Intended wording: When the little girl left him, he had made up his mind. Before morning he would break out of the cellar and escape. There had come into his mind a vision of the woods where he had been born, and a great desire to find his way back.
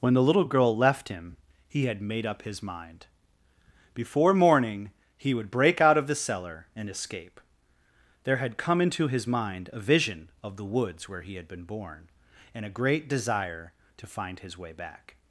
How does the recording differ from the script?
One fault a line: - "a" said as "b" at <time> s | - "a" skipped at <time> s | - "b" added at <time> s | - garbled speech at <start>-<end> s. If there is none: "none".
none